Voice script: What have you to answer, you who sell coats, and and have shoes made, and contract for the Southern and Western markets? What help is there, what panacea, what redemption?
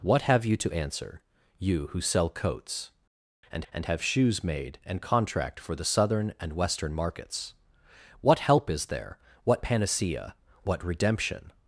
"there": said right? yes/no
yes